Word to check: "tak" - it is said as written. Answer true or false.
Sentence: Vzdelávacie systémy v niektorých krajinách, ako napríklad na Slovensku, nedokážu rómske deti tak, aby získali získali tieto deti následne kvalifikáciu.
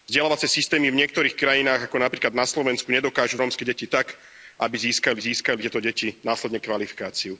true